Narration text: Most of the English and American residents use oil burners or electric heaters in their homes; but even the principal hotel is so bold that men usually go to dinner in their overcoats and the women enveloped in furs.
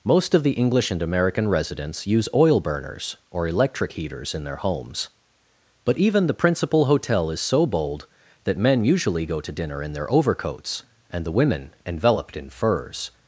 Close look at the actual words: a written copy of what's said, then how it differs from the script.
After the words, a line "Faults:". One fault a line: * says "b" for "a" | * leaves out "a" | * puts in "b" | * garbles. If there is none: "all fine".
Most of the English and American residents use oil burners or electric heaters in their homes; but even the principal hotel is so bold that men usually go to dinner in their overcoats and the women enveloped in furs.
Faults:
all fine